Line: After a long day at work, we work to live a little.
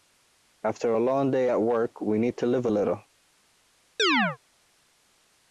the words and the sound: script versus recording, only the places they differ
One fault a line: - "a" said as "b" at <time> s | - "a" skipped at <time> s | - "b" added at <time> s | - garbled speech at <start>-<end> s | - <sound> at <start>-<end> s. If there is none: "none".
- "work" said as "need" at 2.2 s
- chirp at 4.0-4.4 s